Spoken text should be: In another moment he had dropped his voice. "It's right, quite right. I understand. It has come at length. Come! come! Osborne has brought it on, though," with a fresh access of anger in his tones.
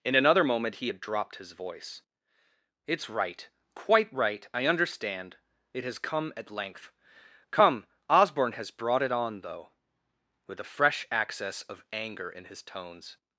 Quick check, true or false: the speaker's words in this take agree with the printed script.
false